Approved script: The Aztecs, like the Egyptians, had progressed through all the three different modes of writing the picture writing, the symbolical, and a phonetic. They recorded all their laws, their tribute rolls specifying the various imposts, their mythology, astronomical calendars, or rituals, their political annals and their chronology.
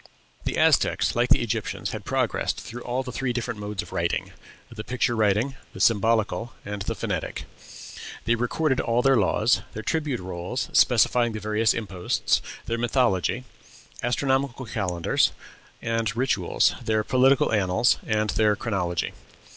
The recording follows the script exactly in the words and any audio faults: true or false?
false